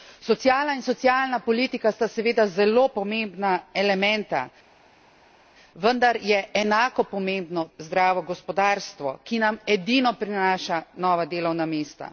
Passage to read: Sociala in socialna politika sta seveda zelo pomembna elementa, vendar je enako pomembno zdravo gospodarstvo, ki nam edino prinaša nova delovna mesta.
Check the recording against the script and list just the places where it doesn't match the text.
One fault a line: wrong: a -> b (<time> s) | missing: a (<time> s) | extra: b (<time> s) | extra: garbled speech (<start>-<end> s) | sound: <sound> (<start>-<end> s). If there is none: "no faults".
no faults